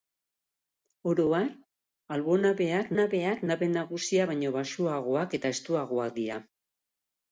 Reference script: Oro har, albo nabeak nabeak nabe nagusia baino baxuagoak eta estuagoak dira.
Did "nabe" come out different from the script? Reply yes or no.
no